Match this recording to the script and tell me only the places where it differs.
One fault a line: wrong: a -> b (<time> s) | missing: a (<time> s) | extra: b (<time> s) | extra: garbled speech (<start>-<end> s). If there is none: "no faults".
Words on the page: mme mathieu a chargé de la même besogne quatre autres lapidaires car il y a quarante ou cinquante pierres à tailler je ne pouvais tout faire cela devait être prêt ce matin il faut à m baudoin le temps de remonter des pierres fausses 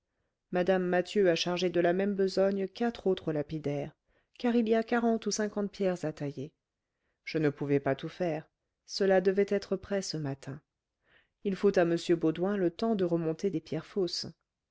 extra: pas (7.8 s)